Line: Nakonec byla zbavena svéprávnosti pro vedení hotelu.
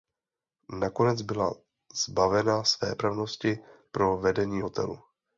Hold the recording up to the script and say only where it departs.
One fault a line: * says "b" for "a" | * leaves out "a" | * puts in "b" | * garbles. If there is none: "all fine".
all fine